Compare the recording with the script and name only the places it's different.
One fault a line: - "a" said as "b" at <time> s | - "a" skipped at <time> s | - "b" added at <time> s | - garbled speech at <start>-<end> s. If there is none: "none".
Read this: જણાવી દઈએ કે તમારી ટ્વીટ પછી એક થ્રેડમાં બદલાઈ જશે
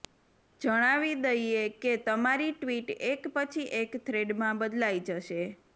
- "એક" added at 3.1 s